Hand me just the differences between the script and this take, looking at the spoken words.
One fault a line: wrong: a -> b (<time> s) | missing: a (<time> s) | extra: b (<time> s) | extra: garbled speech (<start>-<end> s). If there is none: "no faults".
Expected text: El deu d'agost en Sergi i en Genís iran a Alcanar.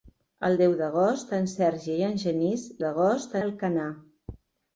wrong: iran -> d'agost (2.8 s)